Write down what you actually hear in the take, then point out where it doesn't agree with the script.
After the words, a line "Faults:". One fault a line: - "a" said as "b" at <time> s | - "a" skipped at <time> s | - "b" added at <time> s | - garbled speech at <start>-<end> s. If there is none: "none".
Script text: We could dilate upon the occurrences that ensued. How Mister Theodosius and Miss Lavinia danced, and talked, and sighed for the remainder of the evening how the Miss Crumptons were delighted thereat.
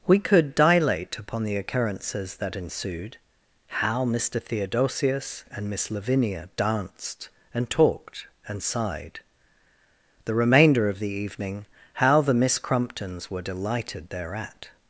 We could dilate upon the occurrences that ensued. How Mister Theodosius and Miss Lavinia danced, and talked, and sighed the remainder of the evening how the Miss Crumptons were delighted thereat.
Faults:
- "for" skipped at 9.2 s